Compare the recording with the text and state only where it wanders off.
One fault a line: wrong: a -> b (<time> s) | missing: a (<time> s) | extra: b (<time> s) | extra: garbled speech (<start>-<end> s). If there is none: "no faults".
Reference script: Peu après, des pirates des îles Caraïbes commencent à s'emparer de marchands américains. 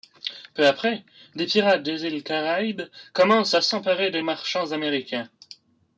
no faults